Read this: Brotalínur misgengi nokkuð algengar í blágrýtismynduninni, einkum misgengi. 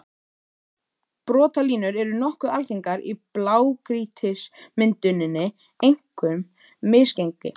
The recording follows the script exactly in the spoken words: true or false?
false